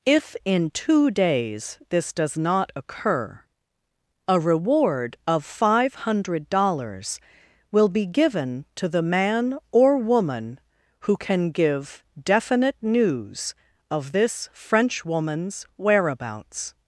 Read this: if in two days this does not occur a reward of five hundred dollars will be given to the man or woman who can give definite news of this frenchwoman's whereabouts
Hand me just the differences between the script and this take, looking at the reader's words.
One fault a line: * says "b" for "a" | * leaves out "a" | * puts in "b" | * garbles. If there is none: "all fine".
all fine